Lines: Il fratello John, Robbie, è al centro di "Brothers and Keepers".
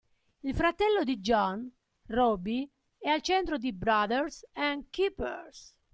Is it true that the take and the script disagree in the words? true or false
true